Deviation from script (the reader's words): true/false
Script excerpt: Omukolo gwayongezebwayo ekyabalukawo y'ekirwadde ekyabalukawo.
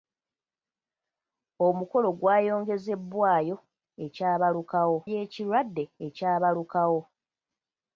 false